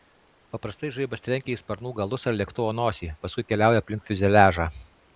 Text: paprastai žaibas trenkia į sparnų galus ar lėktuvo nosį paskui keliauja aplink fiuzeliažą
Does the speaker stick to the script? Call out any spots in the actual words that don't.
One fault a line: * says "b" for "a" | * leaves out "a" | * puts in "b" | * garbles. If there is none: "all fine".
all fine